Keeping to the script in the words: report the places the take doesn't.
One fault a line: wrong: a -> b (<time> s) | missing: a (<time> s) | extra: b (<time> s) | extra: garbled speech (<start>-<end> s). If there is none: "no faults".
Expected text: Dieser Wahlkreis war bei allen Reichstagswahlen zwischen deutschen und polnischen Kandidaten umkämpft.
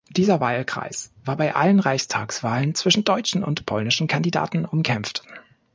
no faults